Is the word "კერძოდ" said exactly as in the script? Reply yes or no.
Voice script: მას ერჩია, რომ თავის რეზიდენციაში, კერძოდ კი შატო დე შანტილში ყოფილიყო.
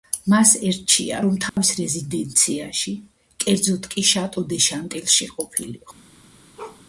yes